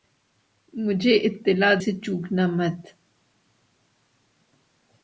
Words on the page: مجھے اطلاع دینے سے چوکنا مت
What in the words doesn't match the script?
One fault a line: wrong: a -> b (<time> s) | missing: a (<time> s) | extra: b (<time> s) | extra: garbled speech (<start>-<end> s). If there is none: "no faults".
missing: دینے (1.7 s)